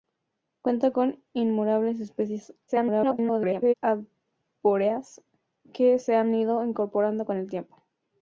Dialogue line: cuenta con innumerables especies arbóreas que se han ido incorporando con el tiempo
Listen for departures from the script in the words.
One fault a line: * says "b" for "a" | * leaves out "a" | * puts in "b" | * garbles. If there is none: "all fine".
* garbles